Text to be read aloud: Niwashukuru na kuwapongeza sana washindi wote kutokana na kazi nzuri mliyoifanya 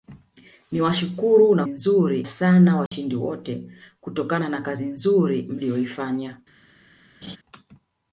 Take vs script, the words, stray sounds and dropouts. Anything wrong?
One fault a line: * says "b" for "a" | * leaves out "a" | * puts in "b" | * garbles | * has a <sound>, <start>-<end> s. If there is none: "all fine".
* says "nzuri" for "kuwapongeza"
* has a dropout, 2.9-2.9 s
* has a laugh, 7.2-7.4 s